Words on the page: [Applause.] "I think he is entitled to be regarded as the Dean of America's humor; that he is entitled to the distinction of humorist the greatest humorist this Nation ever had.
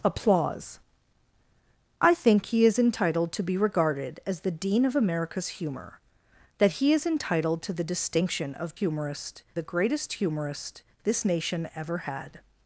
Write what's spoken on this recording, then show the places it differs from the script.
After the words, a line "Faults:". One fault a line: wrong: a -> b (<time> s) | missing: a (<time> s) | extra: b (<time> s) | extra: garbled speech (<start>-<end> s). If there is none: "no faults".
[Applause.] "I think he is entitled to be regarded as the Dean of America's humor; that he is entitled to the distinction of humorist the greatest humorist this Nation ever had.
Faults:
no faults